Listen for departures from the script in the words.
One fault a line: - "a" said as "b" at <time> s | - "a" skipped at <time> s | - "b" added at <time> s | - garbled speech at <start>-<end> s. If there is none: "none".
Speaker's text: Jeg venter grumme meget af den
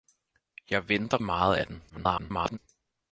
- "grumme" skipped at 1.2 s
- garbled speech at 1.9-2.6 s